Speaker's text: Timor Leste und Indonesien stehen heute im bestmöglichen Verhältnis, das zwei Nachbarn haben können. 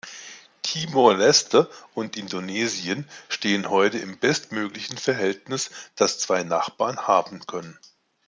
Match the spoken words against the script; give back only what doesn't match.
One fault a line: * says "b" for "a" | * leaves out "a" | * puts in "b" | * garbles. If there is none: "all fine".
all fine